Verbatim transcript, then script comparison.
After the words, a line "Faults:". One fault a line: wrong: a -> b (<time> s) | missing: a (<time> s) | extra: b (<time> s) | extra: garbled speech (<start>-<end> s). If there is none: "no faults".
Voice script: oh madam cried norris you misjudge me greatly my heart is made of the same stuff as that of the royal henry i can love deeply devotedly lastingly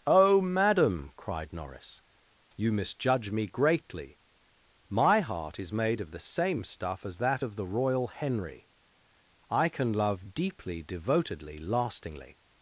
oh madam cried norris you misjudge me greatly my heart is made of the same stuff as that of the royal henry i can love deeply devotedly lastingly
Faults:
no faults